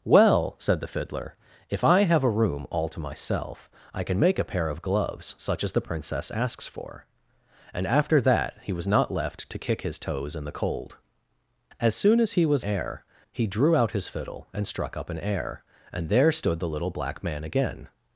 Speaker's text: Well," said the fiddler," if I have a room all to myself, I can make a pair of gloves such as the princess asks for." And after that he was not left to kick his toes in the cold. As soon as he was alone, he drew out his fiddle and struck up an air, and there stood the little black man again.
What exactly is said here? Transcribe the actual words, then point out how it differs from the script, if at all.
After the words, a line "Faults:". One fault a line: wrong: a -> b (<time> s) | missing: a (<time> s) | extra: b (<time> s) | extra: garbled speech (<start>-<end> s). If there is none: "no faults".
Well," said the fiddler," if I have a room all to myself, I can make a pair of gloves such as the princess asks for." And after that he was not left to kick his toes in the cold. As soon as he was air, he drew out his fiddle and struck up an air, and there stood the little black man again.
Faults:
wrong: alone -> air (12.6 s)